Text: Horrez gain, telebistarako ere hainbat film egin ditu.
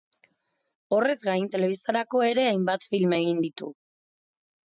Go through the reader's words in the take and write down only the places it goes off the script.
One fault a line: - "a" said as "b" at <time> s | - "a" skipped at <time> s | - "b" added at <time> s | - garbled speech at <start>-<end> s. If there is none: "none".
none